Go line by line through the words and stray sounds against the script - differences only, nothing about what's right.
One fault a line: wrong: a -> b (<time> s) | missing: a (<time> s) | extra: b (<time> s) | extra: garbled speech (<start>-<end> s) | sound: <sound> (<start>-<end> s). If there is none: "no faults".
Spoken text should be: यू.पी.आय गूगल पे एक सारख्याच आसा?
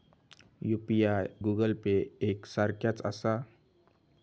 no faults